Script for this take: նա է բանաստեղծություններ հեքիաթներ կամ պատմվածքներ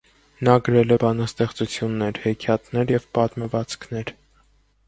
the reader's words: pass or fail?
fail